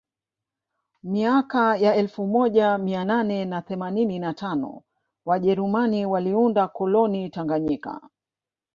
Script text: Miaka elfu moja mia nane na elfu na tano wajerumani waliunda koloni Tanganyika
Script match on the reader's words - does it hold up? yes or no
no